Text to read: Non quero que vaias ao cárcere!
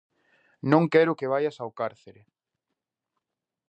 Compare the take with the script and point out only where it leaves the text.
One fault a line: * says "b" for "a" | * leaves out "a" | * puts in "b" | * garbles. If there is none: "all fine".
all fine